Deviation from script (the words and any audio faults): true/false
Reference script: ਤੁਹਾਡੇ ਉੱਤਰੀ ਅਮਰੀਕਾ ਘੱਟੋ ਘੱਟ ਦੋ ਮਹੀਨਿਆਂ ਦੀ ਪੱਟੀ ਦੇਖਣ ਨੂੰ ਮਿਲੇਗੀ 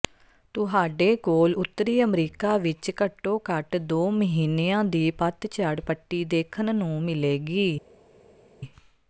true